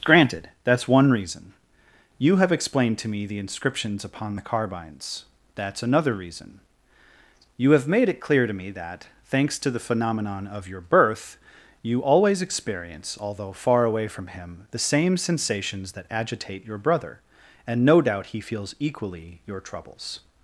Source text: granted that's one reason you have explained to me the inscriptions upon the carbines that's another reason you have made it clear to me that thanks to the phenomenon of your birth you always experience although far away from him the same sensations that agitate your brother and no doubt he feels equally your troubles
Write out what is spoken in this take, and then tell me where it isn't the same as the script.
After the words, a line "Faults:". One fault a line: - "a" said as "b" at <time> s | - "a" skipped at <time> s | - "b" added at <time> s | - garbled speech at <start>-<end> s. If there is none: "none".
granted that's one reason you have explained to me the inscriptions upon the carbines that's another reason you have made it clear to me that thanks to the phenomenon of your birth you always experience although far away from him the same sensations that agitate your brother and no doubt he feels equally your troubles
Faults:
none